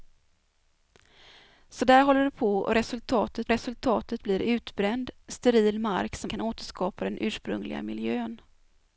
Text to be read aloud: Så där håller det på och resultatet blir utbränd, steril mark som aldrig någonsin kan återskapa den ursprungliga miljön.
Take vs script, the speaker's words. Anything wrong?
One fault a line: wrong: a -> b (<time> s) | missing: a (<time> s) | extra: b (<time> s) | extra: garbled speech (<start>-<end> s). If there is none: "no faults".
extra: resultatet (3.5 s)
missing: aldrig någonsin (6.3 s)